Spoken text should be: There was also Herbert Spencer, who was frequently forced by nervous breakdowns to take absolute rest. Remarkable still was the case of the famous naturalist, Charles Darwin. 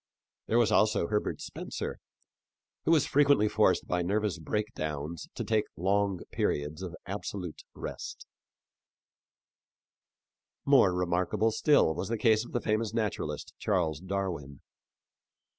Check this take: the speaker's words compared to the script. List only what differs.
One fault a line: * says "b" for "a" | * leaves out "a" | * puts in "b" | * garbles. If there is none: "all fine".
* puts in "long periods of"
* puts in "More"